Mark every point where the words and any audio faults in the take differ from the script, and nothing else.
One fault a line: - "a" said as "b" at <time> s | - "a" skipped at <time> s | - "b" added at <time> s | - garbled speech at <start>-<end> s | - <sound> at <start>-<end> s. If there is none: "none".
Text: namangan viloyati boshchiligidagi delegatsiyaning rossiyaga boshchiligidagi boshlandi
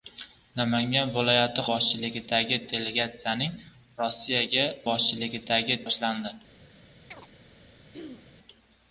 - chirp at 7.1-7.3 s
- throat clearing at 7.9-8.4 s